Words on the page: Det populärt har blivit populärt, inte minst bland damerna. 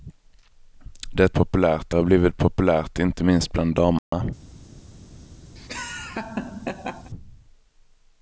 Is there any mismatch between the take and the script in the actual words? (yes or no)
no